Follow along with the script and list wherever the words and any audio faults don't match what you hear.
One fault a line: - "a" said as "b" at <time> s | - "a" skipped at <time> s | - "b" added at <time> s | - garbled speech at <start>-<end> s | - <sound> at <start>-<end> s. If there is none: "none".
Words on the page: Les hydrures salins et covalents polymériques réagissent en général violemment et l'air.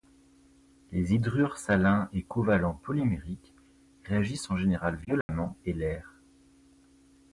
- dropout at 5.2-5.3 s